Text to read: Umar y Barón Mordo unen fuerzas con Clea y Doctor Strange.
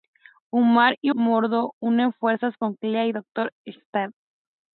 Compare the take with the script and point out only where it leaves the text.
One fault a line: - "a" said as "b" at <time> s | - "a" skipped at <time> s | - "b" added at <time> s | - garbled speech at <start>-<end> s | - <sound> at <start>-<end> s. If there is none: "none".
- "Barón" skipped at 1.1 s